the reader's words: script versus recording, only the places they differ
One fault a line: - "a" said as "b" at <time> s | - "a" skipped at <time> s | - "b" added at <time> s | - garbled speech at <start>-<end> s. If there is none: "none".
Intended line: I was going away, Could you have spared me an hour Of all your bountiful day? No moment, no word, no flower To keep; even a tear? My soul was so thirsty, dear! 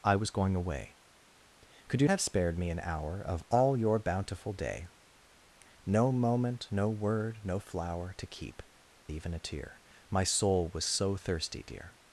none